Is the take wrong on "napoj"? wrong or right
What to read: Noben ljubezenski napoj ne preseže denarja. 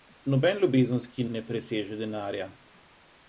wrong